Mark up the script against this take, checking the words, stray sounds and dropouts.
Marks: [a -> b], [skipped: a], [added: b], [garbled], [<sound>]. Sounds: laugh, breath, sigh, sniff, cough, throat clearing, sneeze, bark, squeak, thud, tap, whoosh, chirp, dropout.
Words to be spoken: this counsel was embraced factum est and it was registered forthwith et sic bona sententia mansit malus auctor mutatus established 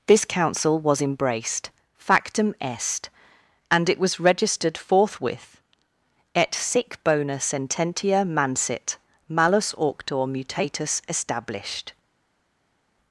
this counsel was embraced factum est and it was registered forthwith et sic bona sententia mansit malus auctor mutatus established